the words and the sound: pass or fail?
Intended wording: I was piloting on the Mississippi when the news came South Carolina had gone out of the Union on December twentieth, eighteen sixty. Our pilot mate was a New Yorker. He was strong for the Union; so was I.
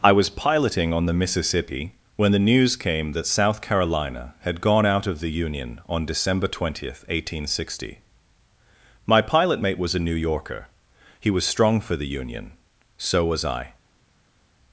fail